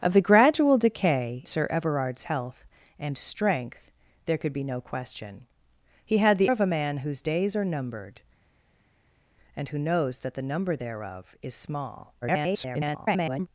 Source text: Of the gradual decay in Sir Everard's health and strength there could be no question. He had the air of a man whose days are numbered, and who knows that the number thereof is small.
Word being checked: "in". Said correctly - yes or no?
no